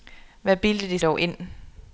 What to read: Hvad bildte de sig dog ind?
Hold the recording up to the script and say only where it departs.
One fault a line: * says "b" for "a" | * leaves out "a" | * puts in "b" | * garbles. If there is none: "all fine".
* leaves out "sig"